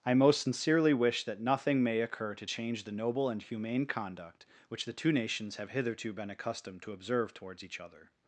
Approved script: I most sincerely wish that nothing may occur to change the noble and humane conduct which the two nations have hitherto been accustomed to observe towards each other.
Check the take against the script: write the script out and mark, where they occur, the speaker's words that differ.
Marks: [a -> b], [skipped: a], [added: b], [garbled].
I most sincerely wish that nothing may occur to change the noble and humane conduct which the two nations have hitherto been accustomed to observe towards each other.